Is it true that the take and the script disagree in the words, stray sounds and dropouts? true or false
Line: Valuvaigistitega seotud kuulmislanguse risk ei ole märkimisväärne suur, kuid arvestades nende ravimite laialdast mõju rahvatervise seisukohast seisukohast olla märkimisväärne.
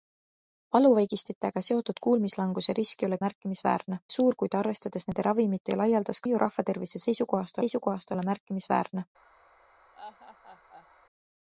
true